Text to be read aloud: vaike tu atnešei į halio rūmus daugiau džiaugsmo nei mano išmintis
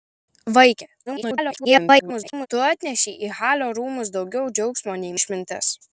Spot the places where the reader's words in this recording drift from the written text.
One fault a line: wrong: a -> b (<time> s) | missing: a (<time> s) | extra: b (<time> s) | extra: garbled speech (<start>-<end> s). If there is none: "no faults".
extra: garbled speech (1.1-2.5 s)
missing: mano (5.2 s)